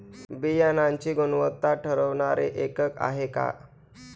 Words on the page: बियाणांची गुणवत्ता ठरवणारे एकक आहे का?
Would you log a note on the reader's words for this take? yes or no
no